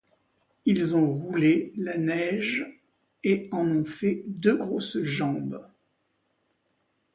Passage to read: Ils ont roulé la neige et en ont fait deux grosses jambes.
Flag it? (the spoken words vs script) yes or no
no